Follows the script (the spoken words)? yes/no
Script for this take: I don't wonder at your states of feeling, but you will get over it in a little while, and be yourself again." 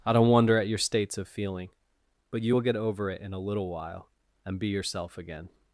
yes